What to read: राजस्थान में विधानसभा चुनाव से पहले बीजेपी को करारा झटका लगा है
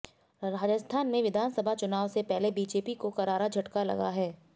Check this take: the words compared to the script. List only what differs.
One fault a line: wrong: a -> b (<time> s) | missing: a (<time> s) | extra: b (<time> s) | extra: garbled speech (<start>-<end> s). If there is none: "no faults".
no faults